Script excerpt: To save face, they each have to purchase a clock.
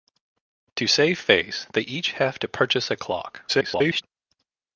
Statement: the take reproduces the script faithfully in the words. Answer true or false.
false